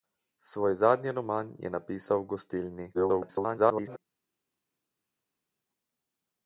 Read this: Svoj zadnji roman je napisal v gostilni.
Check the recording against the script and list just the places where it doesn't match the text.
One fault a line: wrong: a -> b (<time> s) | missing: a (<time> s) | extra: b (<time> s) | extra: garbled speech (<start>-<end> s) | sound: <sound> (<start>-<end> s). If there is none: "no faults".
extra: garbled speech (2.9-4.0 s)